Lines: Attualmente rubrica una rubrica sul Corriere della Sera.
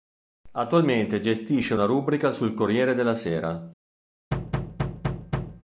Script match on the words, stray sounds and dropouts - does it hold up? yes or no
no